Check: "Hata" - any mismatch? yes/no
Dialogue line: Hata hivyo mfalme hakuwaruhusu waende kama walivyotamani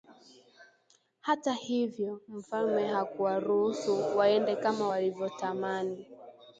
no